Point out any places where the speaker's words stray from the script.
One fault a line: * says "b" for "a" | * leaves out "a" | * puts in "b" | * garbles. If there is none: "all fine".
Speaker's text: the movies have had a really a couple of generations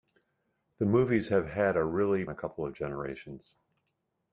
all fine